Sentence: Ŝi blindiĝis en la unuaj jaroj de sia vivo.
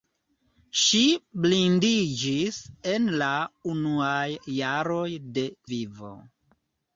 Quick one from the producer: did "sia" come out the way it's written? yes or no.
no